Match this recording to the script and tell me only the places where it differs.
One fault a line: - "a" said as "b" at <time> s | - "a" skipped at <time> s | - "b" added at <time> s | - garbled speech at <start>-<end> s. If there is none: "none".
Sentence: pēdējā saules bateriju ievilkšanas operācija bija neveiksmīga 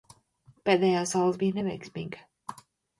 - "bateriju ievilkšanas operācija" skipped at 1.4 s